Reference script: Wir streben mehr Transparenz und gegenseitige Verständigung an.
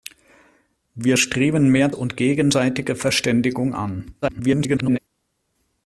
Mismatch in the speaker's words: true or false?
true